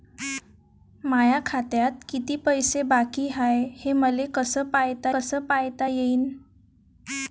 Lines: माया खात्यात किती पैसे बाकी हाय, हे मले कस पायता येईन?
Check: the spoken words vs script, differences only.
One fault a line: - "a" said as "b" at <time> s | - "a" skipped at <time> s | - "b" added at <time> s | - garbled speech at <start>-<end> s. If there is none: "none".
- "कस पायता" added at 5.1 s